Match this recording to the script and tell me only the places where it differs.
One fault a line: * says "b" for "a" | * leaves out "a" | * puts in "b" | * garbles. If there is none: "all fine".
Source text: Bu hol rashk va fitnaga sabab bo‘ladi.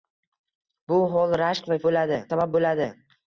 * says "bo‘ladi" for "fitnaga"